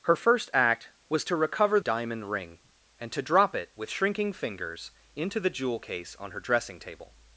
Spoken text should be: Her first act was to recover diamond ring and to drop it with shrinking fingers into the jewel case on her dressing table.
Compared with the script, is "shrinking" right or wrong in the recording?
right